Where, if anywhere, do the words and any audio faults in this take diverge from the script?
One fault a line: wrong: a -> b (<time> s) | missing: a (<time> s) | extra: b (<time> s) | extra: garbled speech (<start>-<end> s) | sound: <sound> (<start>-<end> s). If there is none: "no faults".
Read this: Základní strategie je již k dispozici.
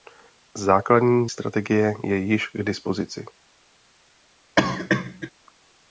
sound: cough (4.6-5.3 s)